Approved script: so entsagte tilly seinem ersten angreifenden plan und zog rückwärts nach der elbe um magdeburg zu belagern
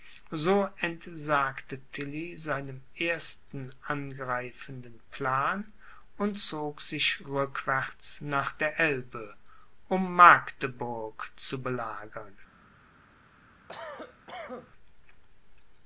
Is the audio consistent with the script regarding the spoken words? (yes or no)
no